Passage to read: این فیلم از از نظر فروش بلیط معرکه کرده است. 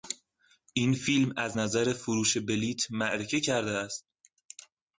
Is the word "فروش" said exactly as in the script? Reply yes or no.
yes